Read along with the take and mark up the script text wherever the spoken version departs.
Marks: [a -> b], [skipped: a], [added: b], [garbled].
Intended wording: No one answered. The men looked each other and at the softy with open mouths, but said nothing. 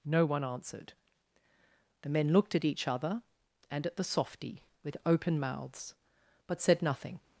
No one answered. The men looked [added: at] each other and at the softy with open mouths, but said nothing.